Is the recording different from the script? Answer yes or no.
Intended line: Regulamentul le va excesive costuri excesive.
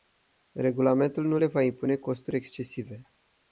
yes